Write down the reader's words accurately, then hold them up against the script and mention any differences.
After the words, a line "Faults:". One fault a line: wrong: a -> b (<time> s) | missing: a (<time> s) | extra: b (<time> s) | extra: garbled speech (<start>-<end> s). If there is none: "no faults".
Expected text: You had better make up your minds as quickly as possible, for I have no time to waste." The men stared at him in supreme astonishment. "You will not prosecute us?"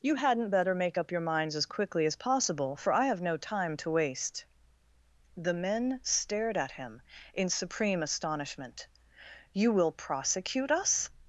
You hadn't better make up your minds as quickly as possible, for I have no time to waste." The men stared at him in supreme astonishment. "You will prosecute us?"
Faults:
wrong: had -> hadn't (0.1 s)
missing: not (9.9 s)